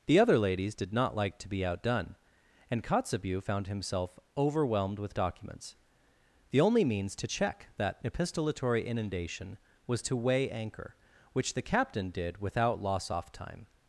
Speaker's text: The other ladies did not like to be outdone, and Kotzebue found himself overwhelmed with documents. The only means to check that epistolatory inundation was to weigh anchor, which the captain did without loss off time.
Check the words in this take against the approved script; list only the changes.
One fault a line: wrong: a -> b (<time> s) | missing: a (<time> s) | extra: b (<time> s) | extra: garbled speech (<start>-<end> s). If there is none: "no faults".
no faults